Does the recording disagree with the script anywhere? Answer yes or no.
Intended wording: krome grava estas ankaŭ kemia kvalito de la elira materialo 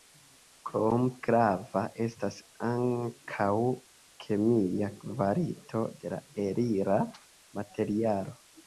no